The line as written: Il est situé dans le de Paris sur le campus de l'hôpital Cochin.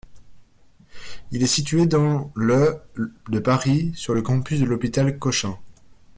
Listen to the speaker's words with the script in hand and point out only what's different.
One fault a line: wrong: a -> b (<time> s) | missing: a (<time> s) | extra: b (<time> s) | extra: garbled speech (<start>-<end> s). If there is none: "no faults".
no faults